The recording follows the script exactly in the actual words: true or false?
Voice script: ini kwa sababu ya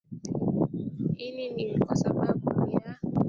false